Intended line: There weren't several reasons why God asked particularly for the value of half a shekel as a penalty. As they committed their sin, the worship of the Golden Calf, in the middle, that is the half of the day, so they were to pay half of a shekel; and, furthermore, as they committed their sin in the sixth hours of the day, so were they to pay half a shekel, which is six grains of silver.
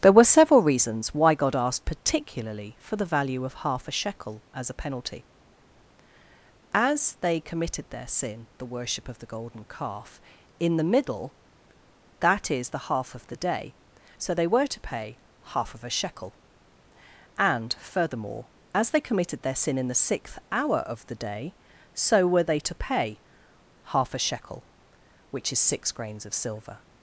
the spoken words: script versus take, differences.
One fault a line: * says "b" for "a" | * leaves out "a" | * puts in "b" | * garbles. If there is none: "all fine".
* says "were" for "weren't"
* says "hour" for "hours"